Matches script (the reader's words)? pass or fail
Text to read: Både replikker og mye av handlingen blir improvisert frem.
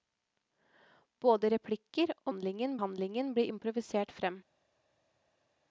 fail